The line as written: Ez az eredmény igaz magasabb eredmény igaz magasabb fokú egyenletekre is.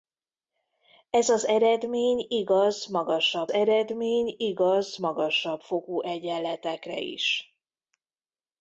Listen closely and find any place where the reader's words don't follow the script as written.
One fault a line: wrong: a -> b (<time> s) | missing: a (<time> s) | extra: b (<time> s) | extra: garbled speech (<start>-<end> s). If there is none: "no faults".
no faults